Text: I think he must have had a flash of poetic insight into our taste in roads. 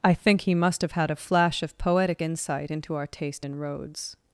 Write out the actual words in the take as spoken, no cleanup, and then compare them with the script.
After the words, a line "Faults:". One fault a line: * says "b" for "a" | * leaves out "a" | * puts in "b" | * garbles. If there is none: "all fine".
I think he must have had a flash of poetic insight into our taste in roads.
Faults:
all fine